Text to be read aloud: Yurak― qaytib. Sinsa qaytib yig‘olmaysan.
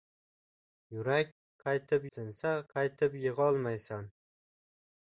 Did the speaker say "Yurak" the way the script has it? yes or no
yes